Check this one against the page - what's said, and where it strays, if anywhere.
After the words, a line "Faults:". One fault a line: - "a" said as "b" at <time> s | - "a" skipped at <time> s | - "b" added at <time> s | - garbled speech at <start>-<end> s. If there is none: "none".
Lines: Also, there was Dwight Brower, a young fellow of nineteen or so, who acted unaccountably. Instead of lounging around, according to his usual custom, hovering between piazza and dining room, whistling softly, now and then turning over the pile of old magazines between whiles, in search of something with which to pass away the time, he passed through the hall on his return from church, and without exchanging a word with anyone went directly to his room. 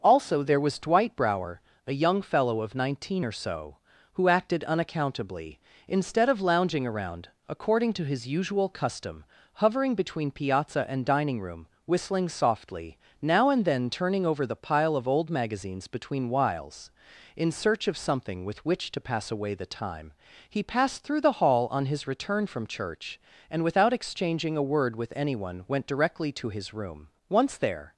Also, there was Dwight Brower, a young fellow of nineteen or so, who acted unaccountably. Instead of lounging around, according to his usual custom, hovering between piazza and dining room, whistling softly, now and then turning over the pile of old magazines between whiles, in search of something with which to pass away the time, he passed through the hall on his return from church, and without exchanging a word with anyone went directly to his room. Once there
Faults:
- "Once there" added at 27.3 s